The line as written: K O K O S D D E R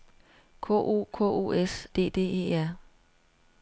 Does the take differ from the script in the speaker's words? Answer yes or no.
no